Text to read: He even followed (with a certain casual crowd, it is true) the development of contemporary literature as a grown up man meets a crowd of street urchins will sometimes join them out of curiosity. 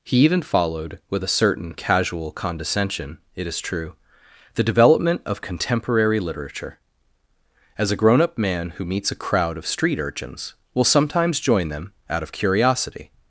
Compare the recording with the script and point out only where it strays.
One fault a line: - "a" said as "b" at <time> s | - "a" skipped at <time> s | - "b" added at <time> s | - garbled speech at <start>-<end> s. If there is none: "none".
- "crowd" said as "condescension" at 2.3 s
- "who" added at 8.7 s